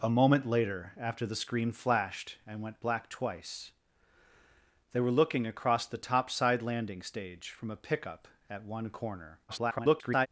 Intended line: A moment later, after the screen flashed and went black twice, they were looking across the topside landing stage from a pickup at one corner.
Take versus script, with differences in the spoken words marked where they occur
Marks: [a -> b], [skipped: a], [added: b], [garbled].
A moment later, after the screen flashed and went black twice, they were looking across the topside landing stage from a pickup at one corner. [garbled]